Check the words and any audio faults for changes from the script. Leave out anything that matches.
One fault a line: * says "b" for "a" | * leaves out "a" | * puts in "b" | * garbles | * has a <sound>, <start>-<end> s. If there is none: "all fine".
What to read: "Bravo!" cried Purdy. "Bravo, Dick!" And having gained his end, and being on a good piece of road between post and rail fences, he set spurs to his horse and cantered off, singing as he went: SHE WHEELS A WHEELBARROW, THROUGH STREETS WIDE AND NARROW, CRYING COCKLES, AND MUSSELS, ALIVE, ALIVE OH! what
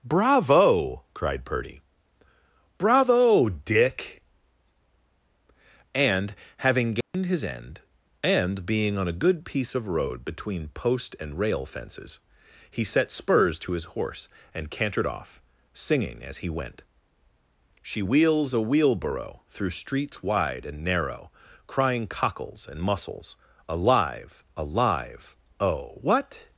* has a dropout, 7.0-7.1 s